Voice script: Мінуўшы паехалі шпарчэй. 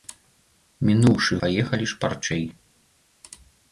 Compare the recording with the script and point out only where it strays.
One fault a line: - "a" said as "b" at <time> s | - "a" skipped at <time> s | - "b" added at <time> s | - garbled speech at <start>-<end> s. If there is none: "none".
none